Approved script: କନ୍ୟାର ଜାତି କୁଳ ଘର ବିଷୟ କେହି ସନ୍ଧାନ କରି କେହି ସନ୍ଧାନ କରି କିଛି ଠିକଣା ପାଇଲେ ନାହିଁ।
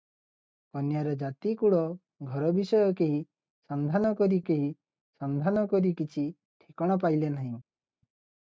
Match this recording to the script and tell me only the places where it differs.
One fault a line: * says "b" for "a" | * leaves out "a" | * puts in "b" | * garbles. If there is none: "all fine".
all fine